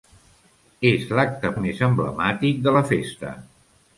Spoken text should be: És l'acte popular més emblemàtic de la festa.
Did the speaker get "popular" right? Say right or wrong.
wrong